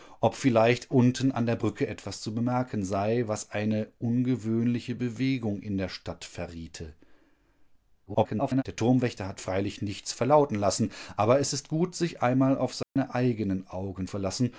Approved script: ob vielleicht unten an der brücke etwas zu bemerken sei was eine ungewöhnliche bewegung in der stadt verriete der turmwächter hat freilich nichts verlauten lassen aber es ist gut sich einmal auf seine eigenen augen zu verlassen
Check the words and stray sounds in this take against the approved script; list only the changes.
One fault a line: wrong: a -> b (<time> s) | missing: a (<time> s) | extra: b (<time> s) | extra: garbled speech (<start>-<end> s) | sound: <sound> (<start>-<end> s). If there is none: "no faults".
extra: garbled speech (8.1-8.6 s)
sound: dropout (12.8-13.0 s)
missing: zu (14.1 s)